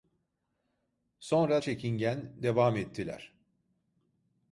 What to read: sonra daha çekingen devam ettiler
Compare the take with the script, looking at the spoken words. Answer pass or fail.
fail